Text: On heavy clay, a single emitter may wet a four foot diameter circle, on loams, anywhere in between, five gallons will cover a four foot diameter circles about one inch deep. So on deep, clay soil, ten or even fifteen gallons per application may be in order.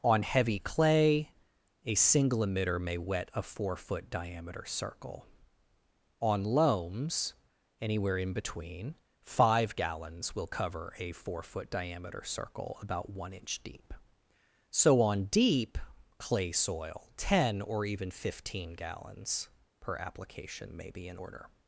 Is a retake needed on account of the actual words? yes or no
yes